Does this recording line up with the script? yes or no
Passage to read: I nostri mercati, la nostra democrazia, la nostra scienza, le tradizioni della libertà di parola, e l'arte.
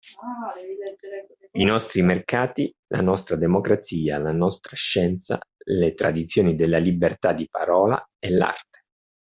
yes